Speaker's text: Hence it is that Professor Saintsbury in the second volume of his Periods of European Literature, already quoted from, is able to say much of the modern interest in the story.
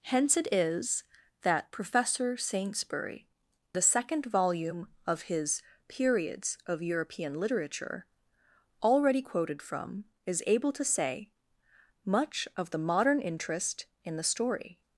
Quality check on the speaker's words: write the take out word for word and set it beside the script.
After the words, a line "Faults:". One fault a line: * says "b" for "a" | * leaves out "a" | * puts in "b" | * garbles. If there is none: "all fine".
Hence it is that Professor Saintsbury the second volume of his Periods of European Literature, already quoted from, is able to say much of the modern interest in the story.
Faults:
* leaves out "in"